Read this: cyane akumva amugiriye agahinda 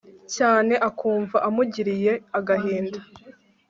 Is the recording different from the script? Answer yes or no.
no